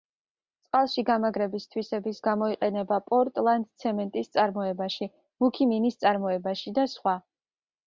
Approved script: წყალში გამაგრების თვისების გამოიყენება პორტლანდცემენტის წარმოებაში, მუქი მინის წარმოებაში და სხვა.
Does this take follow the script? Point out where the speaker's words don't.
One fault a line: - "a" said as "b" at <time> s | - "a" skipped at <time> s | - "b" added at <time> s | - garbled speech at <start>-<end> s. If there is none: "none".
none